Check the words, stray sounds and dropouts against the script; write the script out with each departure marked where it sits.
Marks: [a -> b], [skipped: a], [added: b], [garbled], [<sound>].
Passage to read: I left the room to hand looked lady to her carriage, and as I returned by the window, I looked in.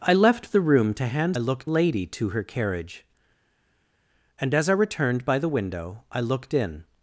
I left the room to hand looked lady to her carriage, and as I returned by the window, I looked in.